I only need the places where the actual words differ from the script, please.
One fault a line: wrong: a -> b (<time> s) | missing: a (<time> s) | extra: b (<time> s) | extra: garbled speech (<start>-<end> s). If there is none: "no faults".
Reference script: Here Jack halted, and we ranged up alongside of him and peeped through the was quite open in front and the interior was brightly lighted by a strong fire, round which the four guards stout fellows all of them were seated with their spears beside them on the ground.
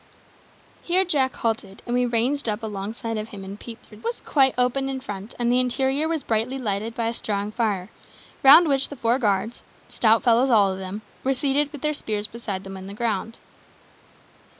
no faults